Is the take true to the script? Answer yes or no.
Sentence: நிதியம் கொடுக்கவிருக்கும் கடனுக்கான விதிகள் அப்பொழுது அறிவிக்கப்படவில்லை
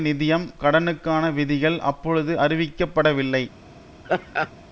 no